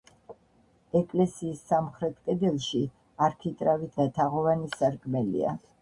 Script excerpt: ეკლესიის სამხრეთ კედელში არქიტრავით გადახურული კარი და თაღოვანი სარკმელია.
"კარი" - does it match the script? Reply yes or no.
no